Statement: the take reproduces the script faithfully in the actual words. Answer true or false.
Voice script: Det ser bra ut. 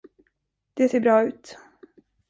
true